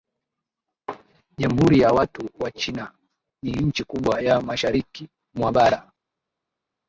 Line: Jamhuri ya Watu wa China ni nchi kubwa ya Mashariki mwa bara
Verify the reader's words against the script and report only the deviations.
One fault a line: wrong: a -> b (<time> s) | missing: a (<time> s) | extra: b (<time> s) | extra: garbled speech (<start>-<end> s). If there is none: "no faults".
no faults